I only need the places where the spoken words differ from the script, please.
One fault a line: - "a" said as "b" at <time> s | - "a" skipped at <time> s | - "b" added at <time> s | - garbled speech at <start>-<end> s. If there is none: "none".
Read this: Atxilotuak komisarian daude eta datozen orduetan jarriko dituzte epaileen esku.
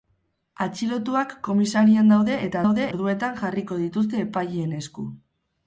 - "datozen" said as "daude" at 2.6 s